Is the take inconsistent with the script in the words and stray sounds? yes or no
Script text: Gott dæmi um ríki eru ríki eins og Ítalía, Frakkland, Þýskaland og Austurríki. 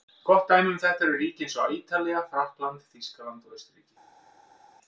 yes